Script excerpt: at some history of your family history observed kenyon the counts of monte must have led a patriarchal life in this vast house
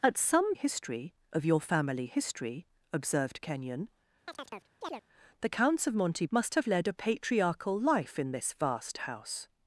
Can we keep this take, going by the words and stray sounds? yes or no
no